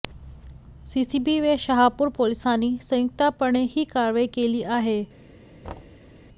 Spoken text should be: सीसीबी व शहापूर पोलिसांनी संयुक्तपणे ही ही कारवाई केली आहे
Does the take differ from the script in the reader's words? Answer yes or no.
yes